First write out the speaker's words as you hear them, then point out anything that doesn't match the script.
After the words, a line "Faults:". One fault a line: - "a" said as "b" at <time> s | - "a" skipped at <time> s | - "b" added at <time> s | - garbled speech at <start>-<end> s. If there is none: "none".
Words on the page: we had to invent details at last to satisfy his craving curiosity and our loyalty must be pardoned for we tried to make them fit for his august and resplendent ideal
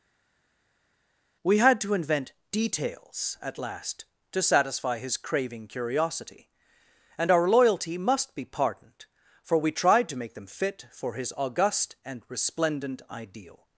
we had to invent details at last to satisfy his craving curiosity and our loyalty must be pardoned for we tried to make them fit for his august and resplendent ideal
Faults:
none